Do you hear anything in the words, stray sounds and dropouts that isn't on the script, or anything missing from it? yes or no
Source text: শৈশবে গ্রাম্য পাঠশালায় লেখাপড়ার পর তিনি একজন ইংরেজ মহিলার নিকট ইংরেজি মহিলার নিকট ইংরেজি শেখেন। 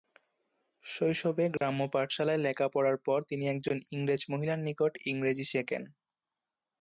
yes